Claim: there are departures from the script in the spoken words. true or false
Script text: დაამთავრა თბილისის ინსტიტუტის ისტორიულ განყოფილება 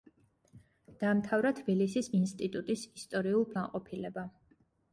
false